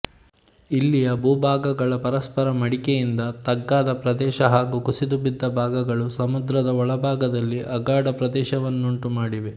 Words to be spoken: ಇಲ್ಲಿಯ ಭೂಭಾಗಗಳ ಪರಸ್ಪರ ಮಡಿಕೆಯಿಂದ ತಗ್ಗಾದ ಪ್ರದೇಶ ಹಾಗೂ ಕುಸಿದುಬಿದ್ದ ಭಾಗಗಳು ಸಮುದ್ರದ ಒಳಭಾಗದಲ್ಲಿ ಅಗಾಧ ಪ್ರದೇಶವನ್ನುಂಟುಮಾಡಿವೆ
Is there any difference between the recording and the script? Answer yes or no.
no